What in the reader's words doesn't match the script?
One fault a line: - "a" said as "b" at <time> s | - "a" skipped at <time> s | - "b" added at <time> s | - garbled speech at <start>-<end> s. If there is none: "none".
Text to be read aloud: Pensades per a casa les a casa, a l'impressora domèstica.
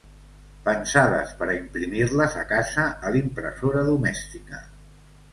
- "casa" said as "imprimir" at 1.6 s